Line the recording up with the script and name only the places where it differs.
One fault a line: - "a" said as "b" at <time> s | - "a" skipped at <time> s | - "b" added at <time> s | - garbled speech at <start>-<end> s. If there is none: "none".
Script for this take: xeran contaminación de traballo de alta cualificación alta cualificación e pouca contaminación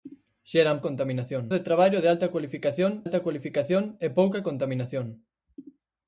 none